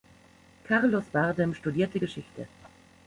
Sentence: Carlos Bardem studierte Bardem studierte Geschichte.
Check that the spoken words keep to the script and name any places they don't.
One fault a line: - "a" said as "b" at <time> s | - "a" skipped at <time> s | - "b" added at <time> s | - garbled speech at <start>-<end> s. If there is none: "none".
- "Bardem studierte" skipped at 2.0 s